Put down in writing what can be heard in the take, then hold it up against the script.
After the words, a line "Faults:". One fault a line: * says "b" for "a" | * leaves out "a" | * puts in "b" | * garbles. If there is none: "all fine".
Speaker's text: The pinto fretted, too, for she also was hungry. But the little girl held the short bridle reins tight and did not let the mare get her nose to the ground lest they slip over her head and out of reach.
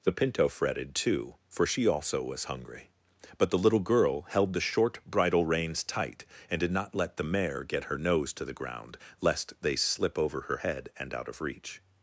The pinto fretted, too, for she also was hungry. But the little girl held the short bridle reins tight and did not let the mare get her nose to the ground lest they slip over her head and out of reach.
Faults:
all fine